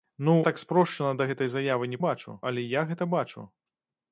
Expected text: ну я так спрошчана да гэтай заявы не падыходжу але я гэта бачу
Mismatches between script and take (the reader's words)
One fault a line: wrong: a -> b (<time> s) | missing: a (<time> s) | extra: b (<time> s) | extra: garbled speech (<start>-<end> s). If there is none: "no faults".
missing: я (0.3 s)
wrong: падыходжу -> бачу (2.1 s)